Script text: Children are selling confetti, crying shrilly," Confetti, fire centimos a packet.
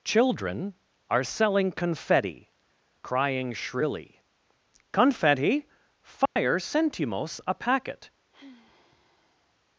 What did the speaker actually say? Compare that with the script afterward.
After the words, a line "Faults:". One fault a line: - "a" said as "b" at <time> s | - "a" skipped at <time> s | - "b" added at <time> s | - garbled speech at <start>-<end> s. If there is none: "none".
Children are selling confetti, crying shrilly," Confetti, fire centimos a packet.
Faults:
none